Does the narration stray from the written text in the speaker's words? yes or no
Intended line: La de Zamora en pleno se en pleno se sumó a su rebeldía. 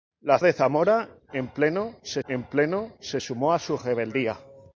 no